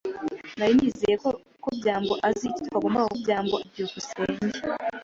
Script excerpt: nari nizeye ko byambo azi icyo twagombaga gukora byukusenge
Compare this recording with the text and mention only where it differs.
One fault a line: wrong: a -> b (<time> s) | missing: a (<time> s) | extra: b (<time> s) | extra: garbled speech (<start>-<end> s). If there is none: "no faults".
wrong: gukora -> byambo (3.2 s)